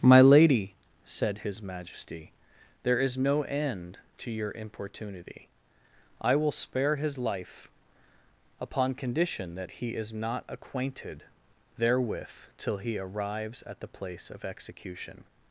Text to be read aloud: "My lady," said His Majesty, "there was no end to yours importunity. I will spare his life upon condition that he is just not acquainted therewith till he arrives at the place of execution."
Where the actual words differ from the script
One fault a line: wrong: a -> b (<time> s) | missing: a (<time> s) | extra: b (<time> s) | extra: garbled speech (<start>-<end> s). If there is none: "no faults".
wrong: was -> is (3.0 s)
wrong: yours -> your (4.3 s)
missing: just (10.1 s)